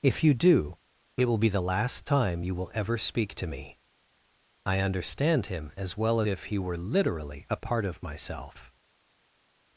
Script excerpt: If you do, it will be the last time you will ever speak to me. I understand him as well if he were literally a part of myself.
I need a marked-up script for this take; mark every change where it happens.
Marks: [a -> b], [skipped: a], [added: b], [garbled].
If you do, it will be the last time you will ever speak to me. I understand him as well if he were literally a part of myself.